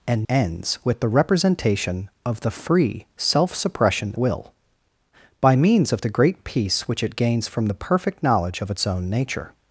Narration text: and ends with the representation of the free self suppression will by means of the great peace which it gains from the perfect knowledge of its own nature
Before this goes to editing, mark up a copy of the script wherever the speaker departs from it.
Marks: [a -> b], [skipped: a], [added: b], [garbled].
and ends with the representation of the free self suppression will by means of the great peace which it gains from the perfect knowledge of its own nature